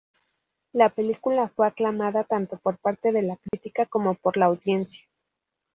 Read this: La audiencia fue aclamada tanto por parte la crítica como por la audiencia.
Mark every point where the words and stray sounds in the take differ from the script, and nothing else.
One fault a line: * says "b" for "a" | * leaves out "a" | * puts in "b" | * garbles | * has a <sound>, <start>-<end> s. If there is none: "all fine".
* says "película" for "audiencia"
* puts in "de"
* has a dropout, 3.5-3.5 s